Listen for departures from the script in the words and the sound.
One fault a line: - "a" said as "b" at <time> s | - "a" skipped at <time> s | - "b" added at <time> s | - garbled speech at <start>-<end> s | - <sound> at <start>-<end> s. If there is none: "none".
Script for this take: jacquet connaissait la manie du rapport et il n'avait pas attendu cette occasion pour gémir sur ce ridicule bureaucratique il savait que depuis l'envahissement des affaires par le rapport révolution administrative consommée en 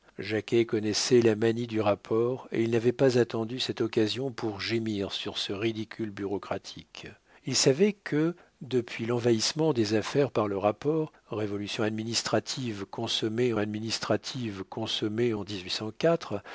- "administrative consommée" added at 13.6 s